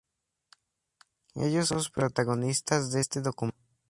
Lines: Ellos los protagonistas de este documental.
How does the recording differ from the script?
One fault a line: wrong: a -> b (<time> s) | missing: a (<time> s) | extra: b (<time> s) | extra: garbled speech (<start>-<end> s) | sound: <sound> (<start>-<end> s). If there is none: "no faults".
no faults